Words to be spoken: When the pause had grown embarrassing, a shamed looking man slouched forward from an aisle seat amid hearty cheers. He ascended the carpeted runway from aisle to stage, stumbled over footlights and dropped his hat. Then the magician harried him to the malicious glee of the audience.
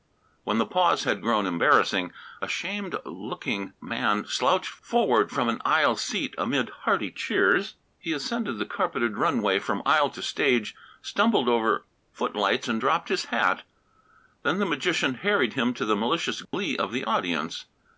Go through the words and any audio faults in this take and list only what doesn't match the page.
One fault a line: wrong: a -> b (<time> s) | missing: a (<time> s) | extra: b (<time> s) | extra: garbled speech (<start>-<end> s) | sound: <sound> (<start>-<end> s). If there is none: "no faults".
sound: dropout (16.5-16.5 s)